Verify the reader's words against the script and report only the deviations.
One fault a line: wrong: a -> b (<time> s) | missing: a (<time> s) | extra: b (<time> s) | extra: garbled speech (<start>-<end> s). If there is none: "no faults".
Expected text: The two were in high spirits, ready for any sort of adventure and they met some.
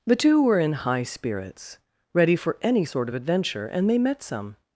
no faults